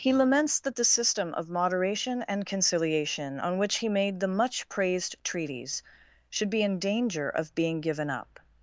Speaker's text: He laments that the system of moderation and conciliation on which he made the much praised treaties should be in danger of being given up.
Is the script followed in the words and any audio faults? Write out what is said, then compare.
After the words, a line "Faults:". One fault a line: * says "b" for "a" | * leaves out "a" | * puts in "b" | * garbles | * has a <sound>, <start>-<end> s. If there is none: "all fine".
He laments that the system of moderation and conciliation on which he made the much praised treaties should be in danger of being given up.
Faults:
all fine